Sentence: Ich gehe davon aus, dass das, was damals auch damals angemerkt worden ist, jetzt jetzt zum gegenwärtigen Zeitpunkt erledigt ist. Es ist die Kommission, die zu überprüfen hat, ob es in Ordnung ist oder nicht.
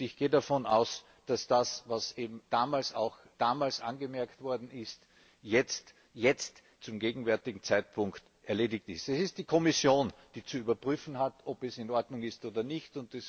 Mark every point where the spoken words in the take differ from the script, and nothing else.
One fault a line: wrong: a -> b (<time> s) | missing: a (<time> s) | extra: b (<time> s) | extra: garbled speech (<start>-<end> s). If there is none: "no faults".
no faults